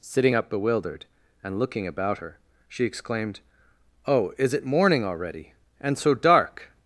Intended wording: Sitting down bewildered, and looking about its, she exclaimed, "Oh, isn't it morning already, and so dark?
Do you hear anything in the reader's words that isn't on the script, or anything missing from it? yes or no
yes